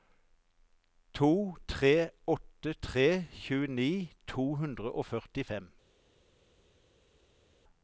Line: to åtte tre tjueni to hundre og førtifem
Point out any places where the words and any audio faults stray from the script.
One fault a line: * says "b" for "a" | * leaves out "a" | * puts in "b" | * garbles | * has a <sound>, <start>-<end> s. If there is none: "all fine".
* puts in "tre"